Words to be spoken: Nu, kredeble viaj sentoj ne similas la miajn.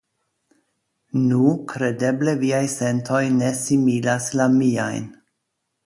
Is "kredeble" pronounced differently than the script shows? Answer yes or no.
no